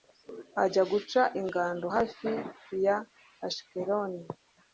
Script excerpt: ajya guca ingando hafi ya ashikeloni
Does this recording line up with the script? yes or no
yes